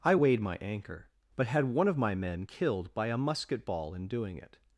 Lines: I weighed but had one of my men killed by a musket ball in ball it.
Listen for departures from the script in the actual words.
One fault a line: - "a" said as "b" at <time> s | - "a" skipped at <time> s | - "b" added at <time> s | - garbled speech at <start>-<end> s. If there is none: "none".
- "my anchor" added at 0.4 s
- "ball" said as "doing" at 4.1 s